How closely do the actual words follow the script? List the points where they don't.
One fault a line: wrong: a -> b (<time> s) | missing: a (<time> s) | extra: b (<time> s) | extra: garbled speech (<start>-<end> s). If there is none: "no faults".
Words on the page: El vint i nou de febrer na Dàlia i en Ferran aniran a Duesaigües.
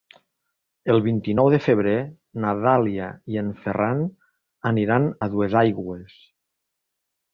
no faults